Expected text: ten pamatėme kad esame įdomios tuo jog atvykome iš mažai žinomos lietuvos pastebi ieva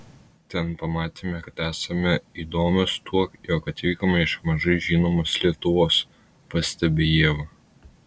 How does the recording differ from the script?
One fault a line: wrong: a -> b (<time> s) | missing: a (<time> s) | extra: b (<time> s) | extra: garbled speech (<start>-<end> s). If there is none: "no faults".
no faults